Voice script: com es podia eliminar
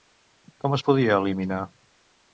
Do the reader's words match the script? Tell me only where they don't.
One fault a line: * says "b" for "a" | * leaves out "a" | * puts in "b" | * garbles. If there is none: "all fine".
all fine